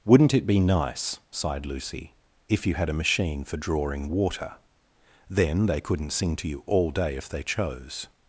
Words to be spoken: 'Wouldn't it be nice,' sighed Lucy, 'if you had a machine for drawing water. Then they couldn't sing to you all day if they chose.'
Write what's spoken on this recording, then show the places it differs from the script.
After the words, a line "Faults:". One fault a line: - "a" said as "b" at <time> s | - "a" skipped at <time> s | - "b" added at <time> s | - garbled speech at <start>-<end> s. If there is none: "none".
'Wouldn't it be nice,' sighed Lucy, 'if you had a machine for drawing water. Then they couldn't sing to you all day if they chose.'
Faults:
none